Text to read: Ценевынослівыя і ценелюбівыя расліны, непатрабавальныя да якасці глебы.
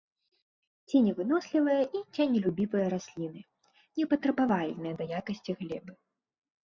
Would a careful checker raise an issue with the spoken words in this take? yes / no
no